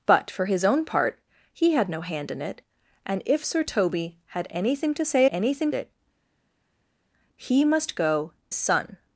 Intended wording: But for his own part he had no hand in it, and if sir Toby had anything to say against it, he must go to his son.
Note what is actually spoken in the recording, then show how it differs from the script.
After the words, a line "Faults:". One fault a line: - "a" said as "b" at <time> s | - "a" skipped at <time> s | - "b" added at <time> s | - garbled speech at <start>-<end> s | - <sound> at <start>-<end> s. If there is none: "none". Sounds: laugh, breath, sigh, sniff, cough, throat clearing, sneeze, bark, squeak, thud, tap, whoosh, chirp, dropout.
But for his own part he had no hand in it, and if sir Toby had anything to say anything it, he must go son.
Faults:
- "against" said as "anything" at 5.3 s
- "to his" skipped at 8.3 s